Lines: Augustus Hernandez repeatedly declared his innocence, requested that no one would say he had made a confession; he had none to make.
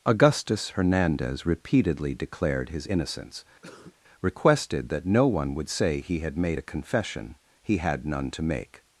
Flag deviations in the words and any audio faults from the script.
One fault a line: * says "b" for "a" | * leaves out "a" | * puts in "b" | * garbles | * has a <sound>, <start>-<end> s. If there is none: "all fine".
* has a cough, 3.6-4.0 s